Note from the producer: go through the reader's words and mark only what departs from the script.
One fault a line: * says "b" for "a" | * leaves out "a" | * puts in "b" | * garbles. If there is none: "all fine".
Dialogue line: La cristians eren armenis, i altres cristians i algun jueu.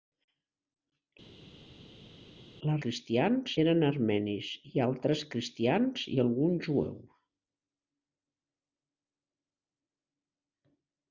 all fine